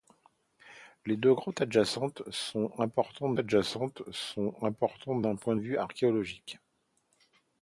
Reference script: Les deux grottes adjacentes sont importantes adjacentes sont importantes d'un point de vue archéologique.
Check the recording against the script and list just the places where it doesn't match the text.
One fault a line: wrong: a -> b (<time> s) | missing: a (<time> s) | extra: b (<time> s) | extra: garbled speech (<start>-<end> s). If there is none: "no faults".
no faults